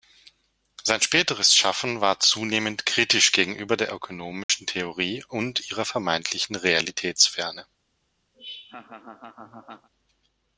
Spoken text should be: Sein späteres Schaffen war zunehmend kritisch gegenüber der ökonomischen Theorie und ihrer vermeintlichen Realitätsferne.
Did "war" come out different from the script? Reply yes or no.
no